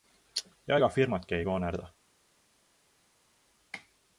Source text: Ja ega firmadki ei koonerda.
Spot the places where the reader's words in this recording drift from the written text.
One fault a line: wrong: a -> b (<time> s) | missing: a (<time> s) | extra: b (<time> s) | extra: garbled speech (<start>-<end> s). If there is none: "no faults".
no faults